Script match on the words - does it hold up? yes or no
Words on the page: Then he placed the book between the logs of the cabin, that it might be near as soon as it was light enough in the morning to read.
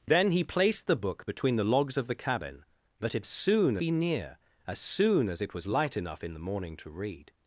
no